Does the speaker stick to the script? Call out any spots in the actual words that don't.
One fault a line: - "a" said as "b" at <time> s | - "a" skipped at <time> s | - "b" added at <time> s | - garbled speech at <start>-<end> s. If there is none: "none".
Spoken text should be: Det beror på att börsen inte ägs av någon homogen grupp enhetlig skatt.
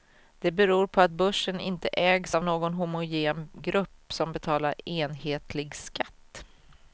- "som betalar" added at 4.1 s